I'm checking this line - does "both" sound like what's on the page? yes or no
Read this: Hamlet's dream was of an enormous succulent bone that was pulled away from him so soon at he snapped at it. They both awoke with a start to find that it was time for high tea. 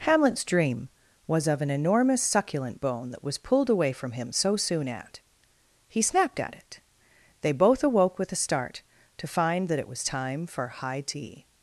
yes